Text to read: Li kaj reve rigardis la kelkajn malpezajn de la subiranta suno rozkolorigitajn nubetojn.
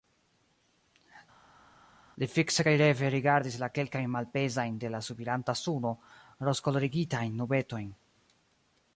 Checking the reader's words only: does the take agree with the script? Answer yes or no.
no